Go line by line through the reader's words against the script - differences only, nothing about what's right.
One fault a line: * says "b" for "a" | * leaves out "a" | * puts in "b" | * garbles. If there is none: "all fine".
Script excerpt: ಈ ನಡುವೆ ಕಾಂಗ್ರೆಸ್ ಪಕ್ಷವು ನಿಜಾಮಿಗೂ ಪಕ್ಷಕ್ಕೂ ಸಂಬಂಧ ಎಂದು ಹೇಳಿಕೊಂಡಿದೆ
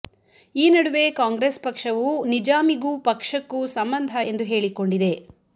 all fine